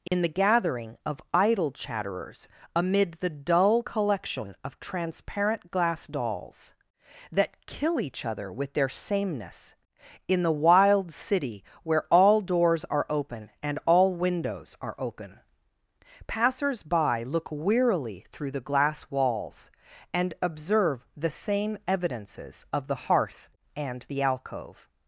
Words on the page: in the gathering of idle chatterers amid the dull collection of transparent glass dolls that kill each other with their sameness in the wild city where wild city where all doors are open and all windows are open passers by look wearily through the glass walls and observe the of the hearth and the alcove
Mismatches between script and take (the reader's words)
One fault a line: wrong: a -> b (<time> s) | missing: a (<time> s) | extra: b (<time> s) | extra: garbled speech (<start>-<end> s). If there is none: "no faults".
missing: wild city where (12.1 s)
extra: same evidences (21.3 s)